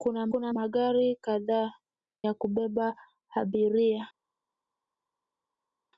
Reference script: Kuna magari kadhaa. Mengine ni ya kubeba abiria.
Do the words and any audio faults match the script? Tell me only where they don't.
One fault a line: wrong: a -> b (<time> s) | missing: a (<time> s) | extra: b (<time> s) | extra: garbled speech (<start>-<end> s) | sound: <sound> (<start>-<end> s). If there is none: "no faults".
extra: kuna (0.3 s)
missing: Mengine ni (1.7 s)